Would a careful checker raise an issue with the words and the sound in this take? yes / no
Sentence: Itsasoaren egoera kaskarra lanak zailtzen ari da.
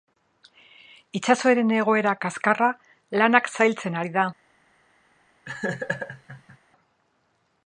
yes